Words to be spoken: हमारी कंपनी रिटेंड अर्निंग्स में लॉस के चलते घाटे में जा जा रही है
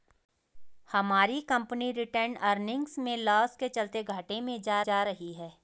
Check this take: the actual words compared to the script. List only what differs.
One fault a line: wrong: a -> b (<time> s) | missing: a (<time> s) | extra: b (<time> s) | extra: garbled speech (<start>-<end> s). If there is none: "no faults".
no faults